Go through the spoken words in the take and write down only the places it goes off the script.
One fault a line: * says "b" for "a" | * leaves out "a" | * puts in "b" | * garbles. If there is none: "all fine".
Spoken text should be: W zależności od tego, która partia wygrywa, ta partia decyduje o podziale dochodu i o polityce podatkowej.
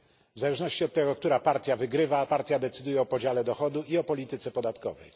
* leaves out "ta"